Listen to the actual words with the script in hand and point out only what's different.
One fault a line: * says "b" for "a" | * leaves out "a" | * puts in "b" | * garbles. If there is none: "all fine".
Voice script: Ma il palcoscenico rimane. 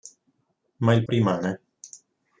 * leaves out "palcoscenico"